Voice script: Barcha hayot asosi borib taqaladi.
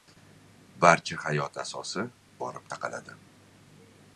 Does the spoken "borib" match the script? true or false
true